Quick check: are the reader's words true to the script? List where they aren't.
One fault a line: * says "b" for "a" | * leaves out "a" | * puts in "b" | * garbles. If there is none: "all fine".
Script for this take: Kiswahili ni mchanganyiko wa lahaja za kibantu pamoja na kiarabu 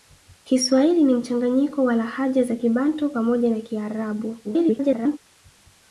* garbles